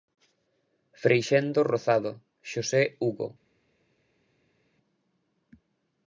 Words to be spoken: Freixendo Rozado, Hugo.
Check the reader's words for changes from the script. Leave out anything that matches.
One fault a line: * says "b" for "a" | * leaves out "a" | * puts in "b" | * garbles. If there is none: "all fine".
* puts in "Xosé"